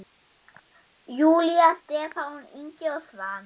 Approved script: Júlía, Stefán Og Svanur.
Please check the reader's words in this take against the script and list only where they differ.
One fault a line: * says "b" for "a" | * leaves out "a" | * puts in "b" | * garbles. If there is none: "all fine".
* puts in "Ingi"